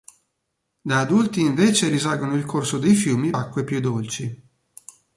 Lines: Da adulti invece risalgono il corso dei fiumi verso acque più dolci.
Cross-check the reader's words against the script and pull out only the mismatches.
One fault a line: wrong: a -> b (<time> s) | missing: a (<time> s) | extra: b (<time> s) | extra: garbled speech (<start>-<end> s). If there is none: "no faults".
missing: verso (3.3 s)